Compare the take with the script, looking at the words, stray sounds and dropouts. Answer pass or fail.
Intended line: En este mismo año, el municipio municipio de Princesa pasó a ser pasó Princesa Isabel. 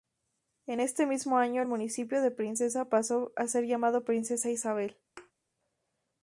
fail